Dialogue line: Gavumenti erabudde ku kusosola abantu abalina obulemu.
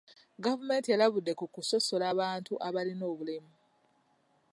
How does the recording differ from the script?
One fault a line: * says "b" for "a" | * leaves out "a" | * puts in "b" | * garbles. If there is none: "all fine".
all fine